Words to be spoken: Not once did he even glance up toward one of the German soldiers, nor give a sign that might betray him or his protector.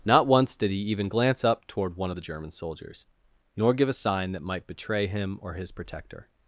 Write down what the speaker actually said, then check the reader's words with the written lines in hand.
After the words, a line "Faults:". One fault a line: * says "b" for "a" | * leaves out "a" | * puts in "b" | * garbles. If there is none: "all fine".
Not once did he even glance up toward one of the German soldiers, nor give a sign that might betray him or his protector.
Faults:
all fine